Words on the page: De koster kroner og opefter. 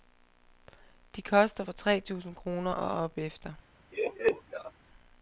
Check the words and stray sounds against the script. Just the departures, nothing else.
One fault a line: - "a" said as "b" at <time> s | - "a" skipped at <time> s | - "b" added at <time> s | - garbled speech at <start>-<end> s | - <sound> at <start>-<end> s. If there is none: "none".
- "fra tre tusind" added at 1.6 s
- laugh at 3.9-4.7 s